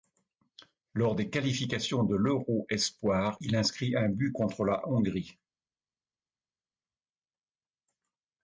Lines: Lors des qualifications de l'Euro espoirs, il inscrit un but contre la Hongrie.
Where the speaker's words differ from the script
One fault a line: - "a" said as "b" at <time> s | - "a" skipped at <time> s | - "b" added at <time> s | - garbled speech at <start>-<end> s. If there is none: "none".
none